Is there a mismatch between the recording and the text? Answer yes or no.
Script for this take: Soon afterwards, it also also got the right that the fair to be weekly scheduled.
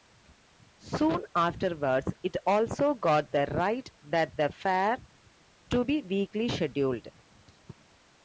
yes